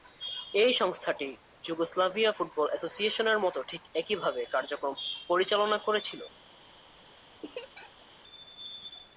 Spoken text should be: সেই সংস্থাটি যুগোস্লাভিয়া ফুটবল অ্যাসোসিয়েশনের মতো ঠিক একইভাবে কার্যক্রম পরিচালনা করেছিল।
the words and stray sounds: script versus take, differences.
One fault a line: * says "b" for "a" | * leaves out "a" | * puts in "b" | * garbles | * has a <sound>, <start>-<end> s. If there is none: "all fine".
* says "এই" for "সেই"
* has a laugh, 7.4-8.1 s